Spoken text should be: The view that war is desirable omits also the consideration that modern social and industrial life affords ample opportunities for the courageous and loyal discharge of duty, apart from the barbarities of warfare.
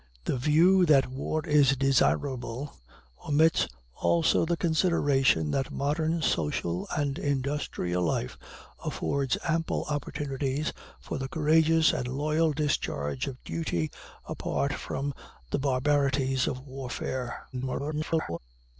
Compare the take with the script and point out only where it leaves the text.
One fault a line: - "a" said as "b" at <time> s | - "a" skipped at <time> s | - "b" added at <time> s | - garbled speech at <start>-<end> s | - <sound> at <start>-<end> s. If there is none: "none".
- garbled speech at 17.5-18.4 s